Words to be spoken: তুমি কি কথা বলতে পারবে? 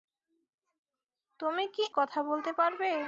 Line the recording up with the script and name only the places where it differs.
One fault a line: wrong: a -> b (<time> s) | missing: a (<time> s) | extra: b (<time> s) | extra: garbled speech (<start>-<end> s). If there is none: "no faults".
no faults